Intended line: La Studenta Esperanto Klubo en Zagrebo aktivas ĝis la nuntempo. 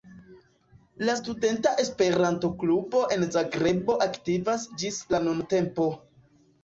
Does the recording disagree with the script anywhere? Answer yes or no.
no